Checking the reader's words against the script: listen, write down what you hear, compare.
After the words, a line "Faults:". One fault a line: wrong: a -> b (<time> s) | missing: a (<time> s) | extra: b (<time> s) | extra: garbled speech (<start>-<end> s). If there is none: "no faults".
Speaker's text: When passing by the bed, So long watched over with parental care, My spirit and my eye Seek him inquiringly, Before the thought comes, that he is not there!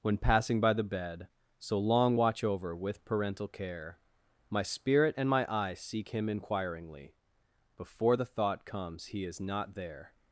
When passing by the bed, So long watch over with parental care, My spirit and my eye Seek him inquiringly, Before the thought comes, he is not there!
Faults:
wrong: watched -> watch (2.2 s)
missing: that (9.1 s)